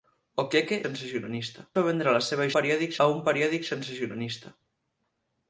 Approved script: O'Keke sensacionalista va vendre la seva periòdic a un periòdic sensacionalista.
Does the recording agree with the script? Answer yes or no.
yes